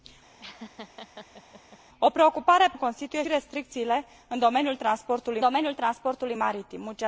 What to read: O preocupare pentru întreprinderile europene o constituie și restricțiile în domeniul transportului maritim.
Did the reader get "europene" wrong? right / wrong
wrong